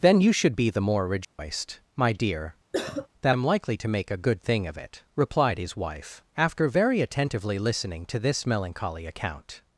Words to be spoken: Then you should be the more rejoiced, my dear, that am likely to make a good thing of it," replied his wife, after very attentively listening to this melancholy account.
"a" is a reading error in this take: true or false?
false